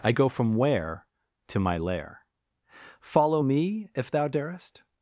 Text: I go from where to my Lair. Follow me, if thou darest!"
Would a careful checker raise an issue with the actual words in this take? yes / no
no